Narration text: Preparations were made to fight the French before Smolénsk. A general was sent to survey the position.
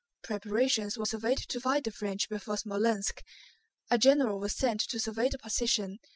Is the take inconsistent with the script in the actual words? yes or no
yes